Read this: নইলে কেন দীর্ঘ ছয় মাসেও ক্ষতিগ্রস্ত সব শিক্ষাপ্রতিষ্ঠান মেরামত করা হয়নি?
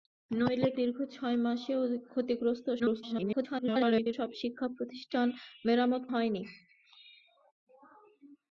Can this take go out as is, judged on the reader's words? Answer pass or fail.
fail